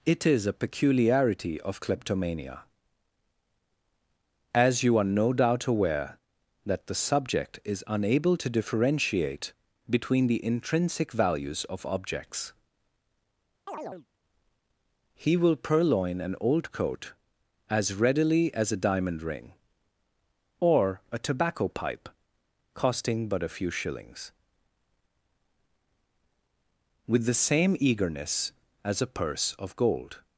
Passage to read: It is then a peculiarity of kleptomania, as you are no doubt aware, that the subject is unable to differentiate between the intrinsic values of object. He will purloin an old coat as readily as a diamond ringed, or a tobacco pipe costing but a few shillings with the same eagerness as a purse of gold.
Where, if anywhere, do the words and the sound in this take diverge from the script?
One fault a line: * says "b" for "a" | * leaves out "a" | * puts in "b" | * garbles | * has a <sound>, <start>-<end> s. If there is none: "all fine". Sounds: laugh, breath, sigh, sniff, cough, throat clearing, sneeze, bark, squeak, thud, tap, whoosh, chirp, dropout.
* leaves out "then"
* says "objects" for "object"
* has a chirp, 13.7-14.1 s
* says "ring" for "ringed"